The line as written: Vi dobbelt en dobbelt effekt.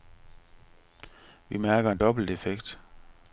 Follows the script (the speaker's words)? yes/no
no